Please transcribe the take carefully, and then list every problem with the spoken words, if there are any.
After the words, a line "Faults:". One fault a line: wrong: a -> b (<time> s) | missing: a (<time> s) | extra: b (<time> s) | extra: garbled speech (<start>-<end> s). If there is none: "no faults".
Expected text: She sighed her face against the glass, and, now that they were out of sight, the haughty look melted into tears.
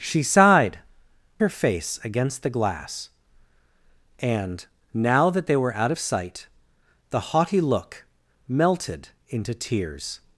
She sighed her face against the glass, and, now that they were out of sight, the haughty look melted into tears.
Faults:
no faults